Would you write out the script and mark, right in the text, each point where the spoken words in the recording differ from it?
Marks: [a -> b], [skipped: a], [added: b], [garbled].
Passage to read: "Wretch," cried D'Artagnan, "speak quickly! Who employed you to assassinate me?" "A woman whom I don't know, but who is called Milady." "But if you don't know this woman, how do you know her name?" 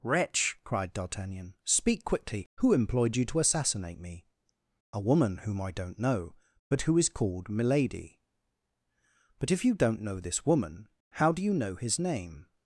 "Wretch," cried D'Artagnan, "speak quickly! Who employed you to assassinate me?" "A woman whom I don't know, but who is called Milady." "But if you don't know this woman, how do you know [her -> his] name?"